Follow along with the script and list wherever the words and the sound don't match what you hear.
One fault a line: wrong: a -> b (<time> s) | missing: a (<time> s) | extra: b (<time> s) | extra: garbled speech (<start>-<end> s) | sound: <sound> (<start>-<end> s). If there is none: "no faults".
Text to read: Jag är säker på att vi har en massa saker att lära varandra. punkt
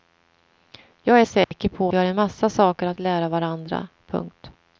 sound: dropout (1.4-1.5 s)
missing: att (1.9 s)